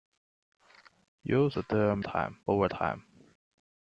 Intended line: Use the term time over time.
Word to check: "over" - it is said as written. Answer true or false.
true